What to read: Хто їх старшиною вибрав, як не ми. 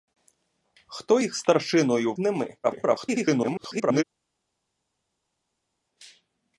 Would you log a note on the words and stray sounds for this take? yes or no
yes